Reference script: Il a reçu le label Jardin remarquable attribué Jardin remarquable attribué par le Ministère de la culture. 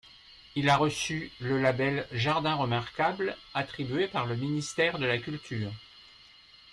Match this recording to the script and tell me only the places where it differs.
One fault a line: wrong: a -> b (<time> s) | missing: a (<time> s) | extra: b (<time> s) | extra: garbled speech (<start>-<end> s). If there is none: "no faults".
missing: Jardin remarquable attribué (4.1 s)